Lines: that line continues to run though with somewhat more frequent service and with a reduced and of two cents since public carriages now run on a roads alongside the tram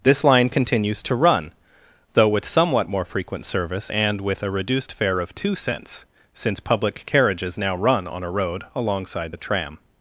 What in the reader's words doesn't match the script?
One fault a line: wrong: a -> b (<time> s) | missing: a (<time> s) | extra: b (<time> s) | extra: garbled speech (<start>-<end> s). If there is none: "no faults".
wrong: that -> this (0.0 s)
wrong: and -> fare (4.9 s)
wrong: roads -> road (8.3 s)